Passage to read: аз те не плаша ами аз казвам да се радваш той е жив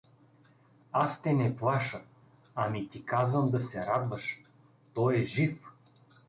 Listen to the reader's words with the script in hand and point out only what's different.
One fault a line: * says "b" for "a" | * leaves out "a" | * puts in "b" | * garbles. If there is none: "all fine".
* says "ти" for "аз"